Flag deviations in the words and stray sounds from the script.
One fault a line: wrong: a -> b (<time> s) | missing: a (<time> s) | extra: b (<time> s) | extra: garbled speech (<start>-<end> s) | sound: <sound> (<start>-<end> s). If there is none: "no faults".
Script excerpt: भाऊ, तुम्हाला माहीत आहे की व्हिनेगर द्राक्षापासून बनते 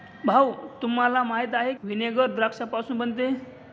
missing: की (1.7 s)